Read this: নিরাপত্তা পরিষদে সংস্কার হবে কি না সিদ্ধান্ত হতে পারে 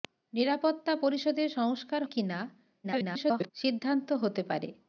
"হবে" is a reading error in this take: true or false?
true